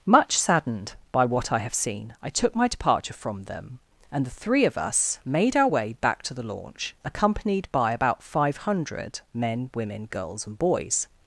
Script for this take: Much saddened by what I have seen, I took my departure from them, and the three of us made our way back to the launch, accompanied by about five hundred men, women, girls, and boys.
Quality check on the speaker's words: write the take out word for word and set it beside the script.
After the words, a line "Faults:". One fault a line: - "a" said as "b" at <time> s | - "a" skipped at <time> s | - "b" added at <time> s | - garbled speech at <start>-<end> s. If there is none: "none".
Much saddened by what I have seen, I took my departure from them, and the three of us made our way back to the launch, accompanied by about five hundred men, women, girls, and boys.
Faults:
none